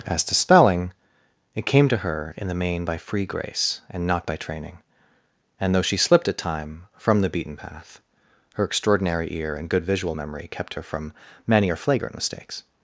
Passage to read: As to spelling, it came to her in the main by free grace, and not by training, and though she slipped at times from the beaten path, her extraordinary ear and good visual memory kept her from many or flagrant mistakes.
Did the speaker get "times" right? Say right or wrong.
wrong